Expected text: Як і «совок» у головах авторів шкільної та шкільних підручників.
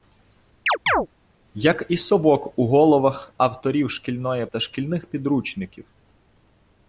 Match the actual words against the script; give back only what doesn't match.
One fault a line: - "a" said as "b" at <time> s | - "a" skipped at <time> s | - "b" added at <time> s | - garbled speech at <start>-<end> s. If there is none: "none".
none